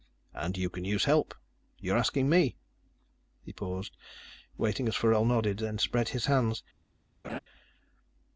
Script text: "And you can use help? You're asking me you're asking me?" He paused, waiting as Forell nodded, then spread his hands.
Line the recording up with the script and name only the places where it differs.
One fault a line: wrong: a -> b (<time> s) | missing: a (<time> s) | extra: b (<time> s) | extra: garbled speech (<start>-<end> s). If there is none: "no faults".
missing: you're asking me (2.5 s)